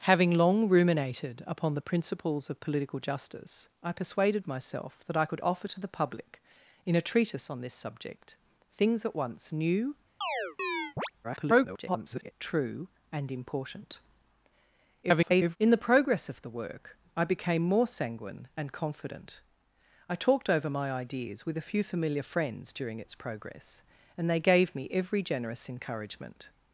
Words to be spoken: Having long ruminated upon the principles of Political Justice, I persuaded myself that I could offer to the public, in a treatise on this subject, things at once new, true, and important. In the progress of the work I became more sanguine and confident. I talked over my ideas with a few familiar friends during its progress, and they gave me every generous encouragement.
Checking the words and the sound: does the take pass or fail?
fail